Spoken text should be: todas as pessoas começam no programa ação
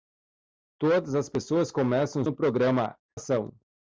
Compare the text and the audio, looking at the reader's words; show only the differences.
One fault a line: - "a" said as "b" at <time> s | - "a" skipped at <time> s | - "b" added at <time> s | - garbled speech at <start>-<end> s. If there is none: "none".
none